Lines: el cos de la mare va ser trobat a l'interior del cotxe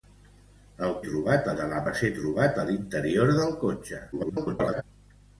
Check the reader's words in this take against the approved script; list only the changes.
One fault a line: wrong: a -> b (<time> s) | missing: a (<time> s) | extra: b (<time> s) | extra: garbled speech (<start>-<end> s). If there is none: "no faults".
wrong: cos -> trobat (1.1 s)
missing: mare (1.8 s)
extra: garbled speech (4.1-4.8 s)